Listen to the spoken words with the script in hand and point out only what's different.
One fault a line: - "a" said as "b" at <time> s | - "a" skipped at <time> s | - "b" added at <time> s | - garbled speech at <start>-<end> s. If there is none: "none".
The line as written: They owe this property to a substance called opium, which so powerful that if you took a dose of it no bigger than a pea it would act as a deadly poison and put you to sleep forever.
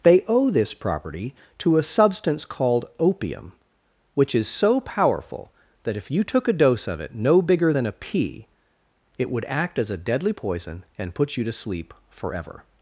- "is" added at 4.3 s